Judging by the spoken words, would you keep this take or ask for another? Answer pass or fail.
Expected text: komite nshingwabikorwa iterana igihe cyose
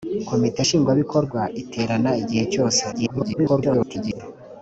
fail